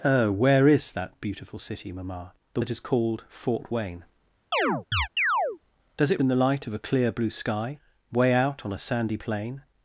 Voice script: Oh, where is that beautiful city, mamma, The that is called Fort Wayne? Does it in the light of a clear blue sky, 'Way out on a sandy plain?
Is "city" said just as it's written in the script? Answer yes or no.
yes